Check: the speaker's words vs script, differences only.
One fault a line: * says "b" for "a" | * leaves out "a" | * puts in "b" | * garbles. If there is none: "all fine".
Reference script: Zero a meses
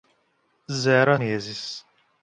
all fine